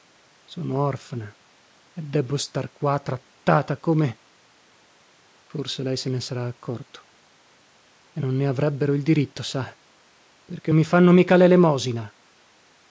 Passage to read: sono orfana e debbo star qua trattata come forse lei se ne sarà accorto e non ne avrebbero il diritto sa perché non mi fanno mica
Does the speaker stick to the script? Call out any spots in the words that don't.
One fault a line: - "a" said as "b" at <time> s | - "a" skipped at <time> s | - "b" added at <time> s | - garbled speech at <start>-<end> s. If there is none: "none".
- "non" skipped at 10.7 s